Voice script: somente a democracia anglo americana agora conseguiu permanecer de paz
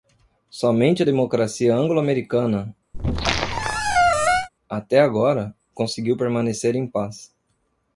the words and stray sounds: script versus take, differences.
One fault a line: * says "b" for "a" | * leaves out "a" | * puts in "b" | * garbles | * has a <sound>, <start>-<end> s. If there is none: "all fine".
* has a squeak, 2.9-4.5 s
* puts in "até"
* says "em" for "de"